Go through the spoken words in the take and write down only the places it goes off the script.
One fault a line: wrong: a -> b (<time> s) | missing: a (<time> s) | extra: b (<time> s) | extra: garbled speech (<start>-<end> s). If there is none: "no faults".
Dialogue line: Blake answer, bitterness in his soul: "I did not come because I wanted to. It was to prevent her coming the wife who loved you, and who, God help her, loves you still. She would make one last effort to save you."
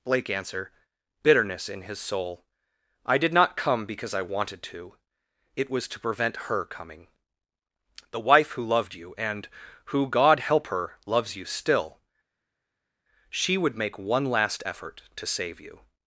no faults